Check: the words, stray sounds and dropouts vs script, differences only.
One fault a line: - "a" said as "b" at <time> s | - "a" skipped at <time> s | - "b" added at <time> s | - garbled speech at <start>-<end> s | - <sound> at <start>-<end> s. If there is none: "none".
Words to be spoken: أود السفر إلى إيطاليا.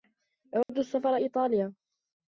- dropout at 0.6-0.7 s
- "إلى" skipped at 1.1 s